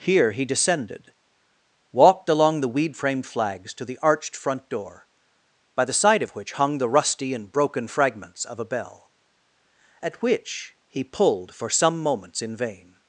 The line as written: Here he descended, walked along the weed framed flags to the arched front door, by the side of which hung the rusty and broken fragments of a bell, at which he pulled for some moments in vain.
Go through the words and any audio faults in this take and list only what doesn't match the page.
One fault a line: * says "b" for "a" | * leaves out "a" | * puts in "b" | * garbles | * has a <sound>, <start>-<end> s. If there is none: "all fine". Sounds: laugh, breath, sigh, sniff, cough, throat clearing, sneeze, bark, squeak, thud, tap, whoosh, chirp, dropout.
all fine